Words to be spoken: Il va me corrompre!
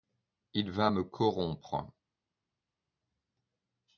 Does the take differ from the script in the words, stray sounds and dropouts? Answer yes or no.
no